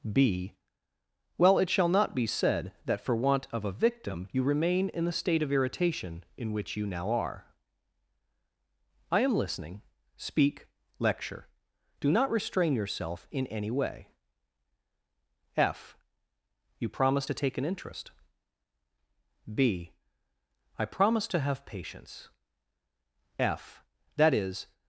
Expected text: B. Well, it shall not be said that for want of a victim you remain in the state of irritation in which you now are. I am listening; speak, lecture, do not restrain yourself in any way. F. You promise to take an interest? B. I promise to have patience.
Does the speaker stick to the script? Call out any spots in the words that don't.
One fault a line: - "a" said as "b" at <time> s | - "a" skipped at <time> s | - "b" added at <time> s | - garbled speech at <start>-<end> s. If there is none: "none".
- "F That is" added at 23.4 s